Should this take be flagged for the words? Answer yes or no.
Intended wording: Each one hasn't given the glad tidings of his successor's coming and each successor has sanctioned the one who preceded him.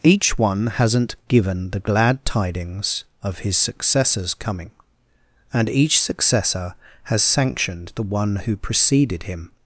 no